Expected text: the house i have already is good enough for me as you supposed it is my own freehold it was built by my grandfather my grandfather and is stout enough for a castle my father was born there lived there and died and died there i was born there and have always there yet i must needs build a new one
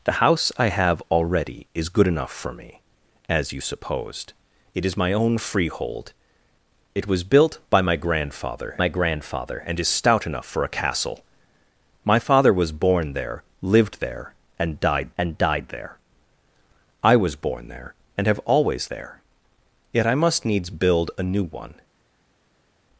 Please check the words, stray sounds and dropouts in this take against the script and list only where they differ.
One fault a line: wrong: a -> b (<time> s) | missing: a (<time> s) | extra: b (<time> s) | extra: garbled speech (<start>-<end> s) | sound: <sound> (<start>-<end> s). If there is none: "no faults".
no faults